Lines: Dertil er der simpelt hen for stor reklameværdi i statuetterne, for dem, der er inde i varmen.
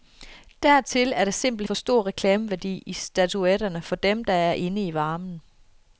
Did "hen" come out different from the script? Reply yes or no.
yes